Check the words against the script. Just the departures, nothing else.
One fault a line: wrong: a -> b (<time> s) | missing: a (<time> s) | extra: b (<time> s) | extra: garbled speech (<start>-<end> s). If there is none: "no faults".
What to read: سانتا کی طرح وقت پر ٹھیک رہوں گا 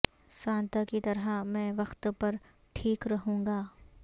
extra: میں (1.4 s)